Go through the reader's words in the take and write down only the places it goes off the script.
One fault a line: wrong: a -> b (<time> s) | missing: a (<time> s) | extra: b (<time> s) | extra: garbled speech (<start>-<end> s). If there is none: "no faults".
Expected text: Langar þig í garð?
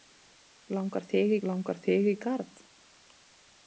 extra: langar þig (1.5 s)